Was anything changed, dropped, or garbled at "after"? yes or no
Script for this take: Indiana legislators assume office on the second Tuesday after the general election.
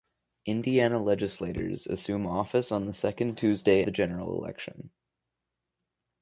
yes